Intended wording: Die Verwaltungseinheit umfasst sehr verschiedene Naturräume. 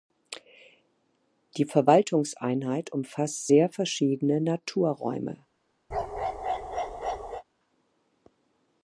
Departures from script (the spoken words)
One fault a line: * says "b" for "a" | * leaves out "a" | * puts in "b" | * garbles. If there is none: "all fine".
all fine